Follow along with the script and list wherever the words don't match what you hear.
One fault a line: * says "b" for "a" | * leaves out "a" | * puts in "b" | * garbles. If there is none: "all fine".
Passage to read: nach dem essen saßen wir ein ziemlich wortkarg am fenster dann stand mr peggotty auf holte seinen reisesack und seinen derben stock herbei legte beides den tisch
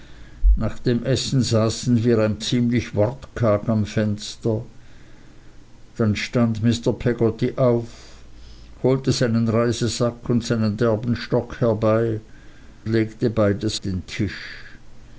all fine